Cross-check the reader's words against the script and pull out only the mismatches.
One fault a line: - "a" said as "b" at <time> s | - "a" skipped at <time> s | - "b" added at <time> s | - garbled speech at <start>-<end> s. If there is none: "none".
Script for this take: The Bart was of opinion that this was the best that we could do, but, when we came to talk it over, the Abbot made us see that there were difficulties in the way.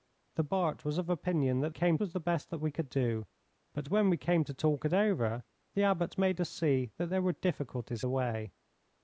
- "this" said as "came" at 1.7 s
- "in" skipped at 8.0 s